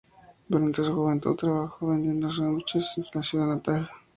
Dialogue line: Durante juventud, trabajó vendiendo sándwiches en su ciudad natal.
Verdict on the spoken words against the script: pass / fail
fail